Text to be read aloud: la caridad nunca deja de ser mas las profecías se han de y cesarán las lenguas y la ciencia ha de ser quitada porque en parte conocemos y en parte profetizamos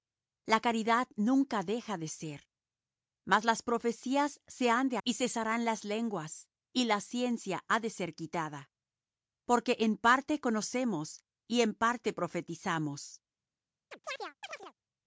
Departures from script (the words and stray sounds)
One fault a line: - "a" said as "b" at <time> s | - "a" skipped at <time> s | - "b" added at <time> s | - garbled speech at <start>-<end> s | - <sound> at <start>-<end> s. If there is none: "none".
- chirp at 13.9-14.7 s